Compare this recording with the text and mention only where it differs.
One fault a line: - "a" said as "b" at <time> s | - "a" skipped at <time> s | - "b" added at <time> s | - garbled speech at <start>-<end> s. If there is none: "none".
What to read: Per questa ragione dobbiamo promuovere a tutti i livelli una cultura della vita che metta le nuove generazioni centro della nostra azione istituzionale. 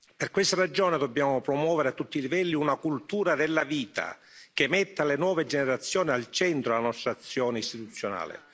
- "al" added at 6.1 s